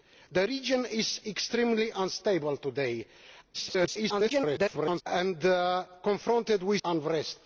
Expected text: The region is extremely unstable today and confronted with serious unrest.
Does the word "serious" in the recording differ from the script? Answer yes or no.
yes